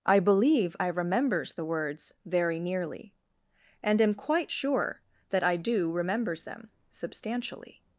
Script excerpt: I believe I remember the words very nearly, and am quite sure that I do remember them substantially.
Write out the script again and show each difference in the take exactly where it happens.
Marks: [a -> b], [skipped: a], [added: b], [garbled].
I believe I [remember -> remembers] the words very nearly, and am quite sure that I do [remember -> remembers] them substantially.